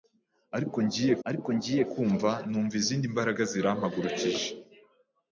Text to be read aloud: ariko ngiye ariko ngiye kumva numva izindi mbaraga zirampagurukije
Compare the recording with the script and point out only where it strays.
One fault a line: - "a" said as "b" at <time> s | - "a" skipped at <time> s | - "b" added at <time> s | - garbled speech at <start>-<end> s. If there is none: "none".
none